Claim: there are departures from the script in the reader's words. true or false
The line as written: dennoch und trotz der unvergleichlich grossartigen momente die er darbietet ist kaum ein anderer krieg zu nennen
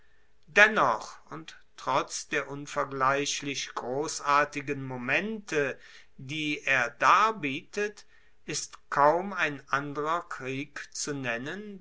false